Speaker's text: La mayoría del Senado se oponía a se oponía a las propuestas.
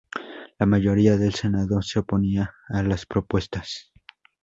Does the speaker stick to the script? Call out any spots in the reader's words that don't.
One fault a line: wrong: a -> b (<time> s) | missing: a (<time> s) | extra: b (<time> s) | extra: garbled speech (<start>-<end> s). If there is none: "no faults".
missing: se oponía a (2.8 s)